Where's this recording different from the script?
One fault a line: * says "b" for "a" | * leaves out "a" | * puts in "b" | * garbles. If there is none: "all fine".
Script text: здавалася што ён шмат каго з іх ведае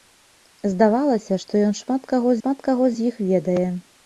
* puts in "шмат каго"